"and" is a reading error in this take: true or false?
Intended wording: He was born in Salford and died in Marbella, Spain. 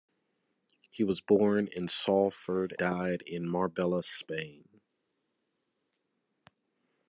true